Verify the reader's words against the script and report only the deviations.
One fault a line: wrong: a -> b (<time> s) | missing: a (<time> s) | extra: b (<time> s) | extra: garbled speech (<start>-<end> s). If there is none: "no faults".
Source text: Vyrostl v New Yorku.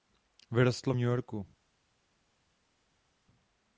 no faults